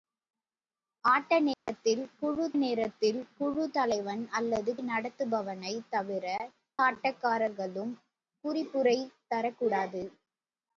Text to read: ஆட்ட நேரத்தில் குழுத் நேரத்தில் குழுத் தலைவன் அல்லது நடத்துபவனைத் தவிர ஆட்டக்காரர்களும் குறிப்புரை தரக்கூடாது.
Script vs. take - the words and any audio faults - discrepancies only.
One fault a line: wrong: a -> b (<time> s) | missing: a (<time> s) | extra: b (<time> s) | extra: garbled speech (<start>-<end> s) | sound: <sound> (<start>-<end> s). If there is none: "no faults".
sound: dropout (1.5-1.7 s)